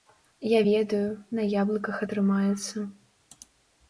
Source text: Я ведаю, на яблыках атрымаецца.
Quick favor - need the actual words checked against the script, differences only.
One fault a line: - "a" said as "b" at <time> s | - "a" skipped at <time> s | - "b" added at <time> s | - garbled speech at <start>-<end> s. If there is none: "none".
none